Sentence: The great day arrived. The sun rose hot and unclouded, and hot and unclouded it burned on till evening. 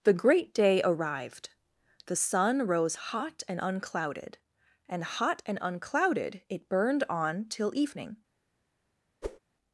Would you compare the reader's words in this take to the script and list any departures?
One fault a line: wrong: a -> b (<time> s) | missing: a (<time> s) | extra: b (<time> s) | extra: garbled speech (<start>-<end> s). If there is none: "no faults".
no faults